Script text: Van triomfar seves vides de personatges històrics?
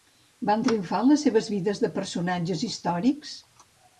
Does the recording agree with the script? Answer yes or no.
no